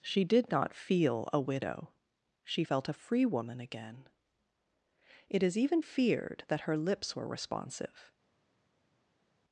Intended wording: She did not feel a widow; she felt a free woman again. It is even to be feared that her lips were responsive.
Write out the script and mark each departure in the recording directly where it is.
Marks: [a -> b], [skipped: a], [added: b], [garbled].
She did not feel a widow; she felt a free woman again. It is even [skipped: to be] feared that her lips were responsive.